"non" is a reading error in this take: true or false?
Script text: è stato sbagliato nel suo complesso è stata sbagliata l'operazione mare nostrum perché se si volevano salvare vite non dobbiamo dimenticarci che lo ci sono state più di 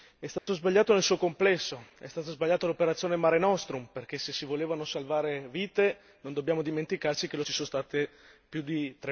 false